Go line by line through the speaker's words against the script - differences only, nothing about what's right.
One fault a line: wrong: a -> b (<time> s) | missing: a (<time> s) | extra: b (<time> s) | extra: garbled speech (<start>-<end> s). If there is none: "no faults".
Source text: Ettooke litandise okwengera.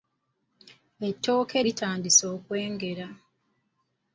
no faults